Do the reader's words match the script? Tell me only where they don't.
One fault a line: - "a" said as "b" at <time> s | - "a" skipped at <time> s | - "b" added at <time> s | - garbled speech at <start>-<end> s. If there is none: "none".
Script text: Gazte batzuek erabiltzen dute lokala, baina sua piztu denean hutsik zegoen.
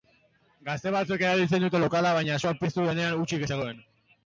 none